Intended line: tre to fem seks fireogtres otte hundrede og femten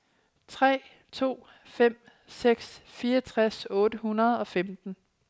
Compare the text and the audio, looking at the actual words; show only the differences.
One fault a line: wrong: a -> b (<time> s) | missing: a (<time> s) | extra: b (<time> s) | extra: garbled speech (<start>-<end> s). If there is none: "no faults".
no faults